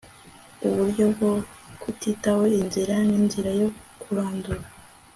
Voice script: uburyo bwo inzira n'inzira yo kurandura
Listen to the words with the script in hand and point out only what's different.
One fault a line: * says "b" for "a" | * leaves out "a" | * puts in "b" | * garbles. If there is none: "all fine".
* puts in "kutitaho"